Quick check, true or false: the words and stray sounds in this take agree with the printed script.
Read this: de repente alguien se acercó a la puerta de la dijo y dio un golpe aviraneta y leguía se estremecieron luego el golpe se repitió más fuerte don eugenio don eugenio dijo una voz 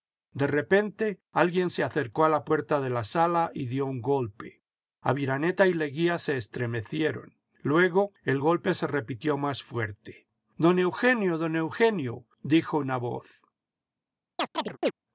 false